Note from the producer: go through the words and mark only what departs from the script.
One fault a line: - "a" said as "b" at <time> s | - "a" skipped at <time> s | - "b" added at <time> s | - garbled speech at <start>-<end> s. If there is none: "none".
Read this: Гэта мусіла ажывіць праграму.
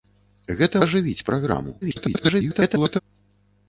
- "мусіла" skipped at 0.8 s
- garbled speech at 1.8-3.0 s